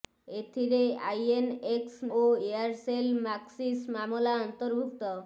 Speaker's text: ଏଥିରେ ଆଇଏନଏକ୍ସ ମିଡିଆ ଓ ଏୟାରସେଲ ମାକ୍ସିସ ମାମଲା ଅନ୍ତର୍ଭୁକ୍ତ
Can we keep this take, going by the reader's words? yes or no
no